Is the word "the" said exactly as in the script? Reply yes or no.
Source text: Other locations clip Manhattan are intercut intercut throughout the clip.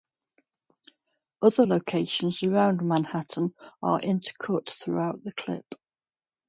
yes